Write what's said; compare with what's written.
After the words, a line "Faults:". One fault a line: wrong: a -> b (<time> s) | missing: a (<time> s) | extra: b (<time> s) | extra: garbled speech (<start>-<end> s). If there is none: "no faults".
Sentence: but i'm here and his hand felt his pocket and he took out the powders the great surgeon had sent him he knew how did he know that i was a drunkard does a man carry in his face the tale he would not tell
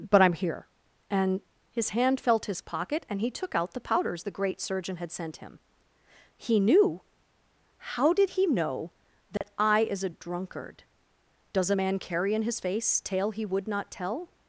but i'm here and his hand felt his pocket and he took out the powders the great surgeon had sent him he knew how did he know that i is a drunkard does a man carry in his face tale he would not tell
Faults:
wrong: was -> is (9.8 s)
missing: the (13.0 s)